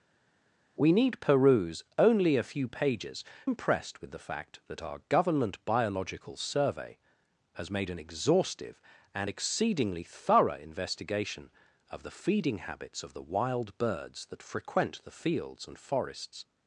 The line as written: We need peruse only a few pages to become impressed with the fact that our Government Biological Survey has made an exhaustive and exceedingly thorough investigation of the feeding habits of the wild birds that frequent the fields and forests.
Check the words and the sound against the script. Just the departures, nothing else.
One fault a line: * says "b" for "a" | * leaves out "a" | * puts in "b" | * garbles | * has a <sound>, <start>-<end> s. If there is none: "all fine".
* leaves out "to become"